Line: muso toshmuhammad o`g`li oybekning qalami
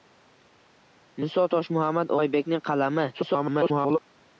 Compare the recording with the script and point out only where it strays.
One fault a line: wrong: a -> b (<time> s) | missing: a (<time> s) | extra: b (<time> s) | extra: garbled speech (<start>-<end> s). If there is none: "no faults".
missing: o`g`li (2.1 s)
extra: garbled speech (3.1-4.0 s)